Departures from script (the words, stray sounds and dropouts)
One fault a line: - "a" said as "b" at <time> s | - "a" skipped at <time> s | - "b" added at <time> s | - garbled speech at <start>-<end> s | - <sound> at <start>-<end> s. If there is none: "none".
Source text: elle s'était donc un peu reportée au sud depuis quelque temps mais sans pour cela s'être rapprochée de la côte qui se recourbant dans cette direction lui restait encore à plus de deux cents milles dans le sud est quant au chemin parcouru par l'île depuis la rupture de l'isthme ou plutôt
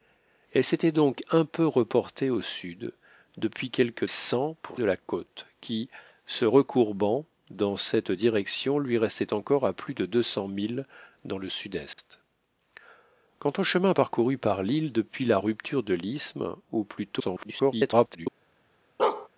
- "temps mais" skipped at 4.0 s
- "cela s'être rapprochée" skipped at 4.8 s
- dropout at 11.9-12.0 s
- garbled speech at 17.2-18.3 s
- bark at 19.0-19.3 s